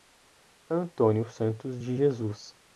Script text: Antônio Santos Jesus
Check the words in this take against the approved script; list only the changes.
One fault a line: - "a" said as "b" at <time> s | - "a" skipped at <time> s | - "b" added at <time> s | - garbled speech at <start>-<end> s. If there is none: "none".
- "de" added at 1.8 s